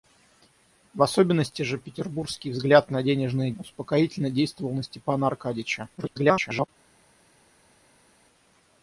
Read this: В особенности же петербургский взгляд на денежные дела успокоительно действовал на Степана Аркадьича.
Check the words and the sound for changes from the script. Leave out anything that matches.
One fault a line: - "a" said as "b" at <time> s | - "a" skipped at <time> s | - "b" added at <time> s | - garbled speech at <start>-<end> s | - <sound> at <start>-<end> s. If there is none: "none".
- "дела" skipped at 3.5 s
- garbled speech at 6.0-6.7 s